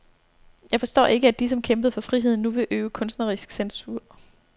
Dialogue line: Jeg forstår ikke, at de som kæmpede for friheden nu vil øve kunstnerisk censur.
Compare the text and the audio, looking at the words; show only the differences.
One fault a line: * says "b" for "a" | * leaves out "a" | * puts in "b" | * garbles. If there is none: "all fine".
all fine